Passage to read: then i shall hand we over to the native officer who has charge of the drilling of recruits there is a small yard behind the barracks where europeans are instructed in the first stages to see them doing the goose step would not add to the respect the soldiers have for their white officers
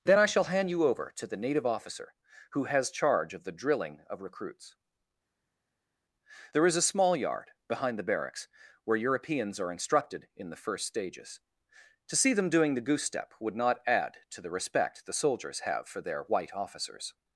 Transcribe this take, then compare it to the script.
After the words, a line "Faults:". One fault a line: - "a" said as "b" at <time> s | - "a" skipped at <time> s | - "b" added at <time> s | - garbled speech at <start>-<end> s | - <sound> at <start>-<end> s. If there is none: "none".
then i shall hand you over to the native officer who has charge of the drilling of recruits there is a small yard behind the barracks where europeans are instructed in the first stages to see them doing the goose step would not add to the respect the soldiers have for their white officers
Faults:
- "we" said as "you" at 0.7 s